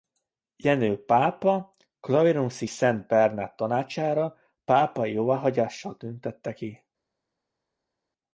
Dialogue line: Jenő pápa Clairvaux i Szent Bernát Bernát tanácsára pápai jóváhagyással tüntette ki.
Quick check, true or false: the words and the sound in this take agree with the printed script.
false